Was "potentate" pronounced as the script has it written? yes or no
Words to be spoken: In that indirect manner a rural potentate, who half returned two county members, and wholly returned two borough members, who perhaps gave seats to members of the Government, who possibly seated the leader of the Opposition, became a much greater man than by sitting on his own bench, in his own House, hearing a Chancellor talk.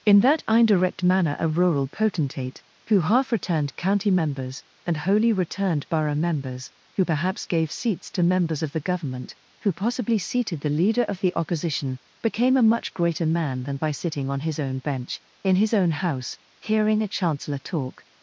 yes